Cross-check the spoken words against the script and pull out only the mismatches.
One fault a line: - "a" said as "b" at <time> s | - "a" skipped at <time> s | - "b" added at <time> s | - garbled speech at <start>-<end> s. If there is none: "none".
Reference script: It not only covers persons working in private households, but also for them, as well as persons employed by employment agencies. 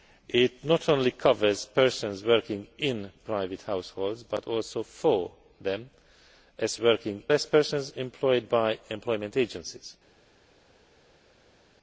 - "well" said as "working" at 6.8 s